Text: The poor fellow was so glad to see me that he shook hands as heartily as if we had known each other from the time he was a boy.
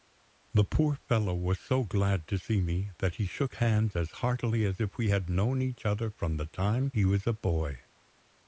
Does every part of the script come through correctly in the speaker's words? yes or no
yes